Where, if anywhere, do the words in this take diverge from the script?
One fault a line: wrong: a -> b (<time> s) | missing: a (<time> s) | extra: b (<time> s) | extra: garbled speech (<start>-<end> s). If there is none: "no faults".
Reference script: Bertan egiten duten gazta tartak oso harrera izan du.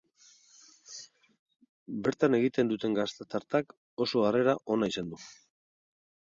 extra: ona (4.8 s)